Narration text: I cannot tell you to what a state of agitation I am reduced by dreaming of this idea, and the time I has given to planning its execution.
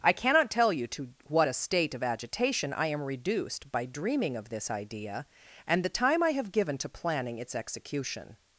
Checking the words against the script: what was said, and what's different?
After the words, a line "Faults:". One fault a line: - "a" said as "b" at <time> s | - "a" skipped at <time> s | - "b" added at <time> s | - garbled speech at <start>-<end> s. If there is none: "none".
I cannot tell you to what a state of agitation I am reduced by dreaming of this idea, and the time I have given to planning its execution.
Faults:
- "has" said as "have" at 6.3 s